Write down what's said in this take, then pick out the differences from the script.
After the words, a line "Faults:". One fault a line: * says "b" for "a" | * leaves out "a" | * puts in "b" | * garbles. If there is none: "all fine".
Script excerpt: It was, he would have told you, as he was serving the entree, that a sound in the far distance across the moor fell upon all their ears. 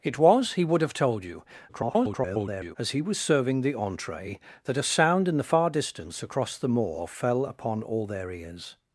It was, he would have told you, [garbled] as he was serving the entree, that a sound in the far distance across the moor fell upon all their ears.
Faults:
* garbles